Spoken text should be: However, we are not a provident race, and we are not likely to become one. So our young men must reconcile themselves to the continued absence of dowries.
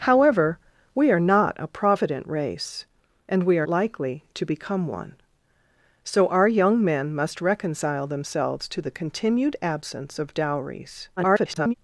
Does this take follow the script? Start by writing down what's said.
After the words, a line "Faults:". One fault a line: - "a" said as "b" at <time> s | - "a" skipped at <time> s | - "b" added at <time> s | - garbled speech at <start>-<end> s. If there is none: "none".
However, we are not a provident race, and we are likely to become one. So our young men must reconcile themselves to the continued absence of dowries. [garbled]
Faults:
- "not" skipped at 3.7 s
- garbled speech at 11.2-11.7 s